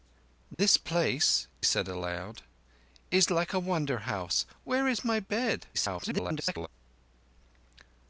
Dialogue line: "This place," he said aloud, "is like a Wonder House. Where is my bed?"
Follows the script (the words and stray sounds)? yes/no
no